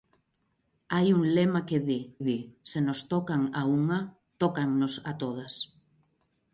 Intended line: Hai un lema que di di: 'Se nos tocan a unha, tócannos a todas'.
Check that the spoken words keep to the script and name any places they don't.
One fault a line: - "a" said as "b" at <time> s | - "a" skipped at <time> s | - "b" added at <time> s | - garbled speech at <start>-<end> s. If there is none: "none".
none